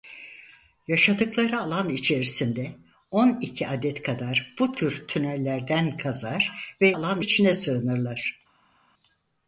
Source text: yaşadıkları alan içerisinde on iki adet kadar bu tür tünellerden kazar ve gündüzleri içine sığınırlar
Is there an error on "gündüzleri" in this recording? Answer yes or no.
yes